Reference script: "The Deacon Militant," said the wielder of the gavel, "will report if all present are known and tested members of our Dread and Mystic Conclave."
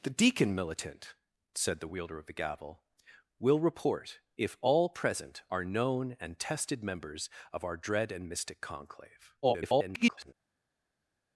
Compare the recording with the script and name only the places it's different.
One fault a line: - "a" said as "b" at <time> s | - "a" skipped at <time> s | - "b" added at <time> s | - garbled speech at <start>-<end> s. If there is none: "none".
- garbled speech at 9.4-10.3 s